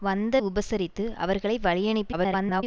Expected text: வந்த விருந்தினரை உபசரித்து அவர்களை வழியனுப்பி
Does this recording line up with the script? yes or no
no